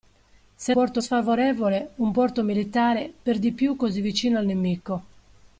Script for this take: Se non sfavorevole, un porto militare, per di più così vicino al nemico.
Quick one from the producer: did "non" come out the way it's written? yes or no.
no